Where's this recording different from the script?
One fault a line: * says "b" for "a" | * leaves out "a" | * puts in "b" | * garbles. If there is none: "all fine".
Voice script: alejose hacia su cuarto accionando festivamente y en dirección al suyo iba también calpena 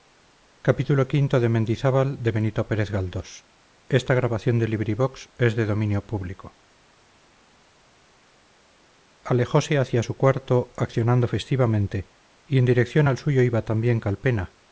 all fine